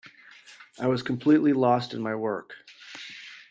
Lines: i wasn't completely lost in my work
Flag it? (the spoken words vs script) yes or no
yes